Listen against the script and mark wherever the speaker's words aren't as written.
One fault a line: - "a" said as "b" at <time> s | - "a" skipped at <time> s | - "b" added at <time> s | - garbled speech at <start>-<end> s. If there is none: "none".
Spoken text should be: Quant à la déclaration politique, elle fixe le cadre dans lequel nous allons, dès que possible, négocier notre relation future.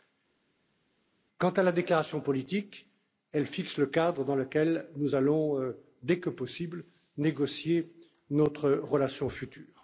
none